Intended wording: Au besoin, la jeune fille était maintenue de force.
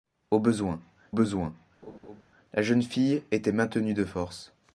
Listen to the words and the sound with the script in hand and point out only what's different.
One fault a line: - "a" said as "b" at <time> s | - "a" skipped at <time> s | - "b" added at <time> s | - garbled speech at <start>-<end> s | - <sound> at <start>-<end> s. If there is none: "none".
- "besoin" added at 1.1 s
- laugh at 1.8-2.2 s